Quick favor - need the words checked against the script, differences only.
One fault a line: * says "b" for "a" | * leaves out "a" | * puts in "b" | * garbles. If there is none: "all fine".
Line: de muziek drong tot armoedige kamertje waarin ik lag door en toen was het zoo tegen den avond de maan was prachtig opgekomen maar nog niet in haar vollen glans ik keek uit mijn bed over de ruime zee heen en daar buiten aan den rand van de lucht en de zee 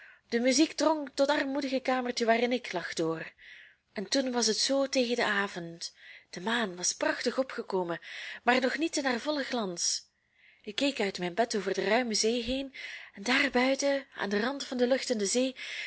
all fine